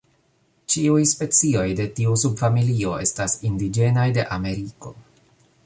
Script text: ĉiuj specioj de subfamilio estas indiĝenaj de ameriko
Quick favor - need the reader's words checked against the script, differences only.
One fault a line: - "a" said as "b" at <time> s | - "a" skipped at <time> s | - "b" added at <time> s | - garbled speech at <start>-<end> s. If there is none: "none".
- "tiu" added at 2.0 s